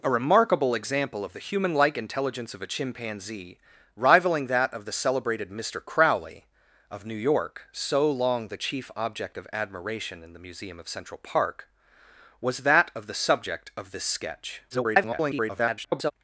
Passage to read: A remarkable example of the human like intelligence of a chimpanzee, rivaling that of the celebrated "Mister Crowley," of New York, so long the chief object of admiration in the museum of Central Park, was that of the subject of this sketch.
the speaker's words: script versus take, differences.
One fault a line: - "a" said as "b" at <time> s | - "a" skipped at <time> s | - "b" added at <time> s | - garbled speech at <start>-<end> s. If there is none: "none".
- garbled speech at 14.7-16.1 s